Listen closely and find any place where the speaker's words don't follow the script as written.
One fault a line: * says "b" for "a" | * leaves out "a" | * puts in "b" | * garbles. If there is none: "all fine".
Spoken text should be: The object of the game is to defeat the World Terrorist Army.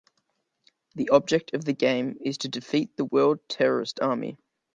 all fine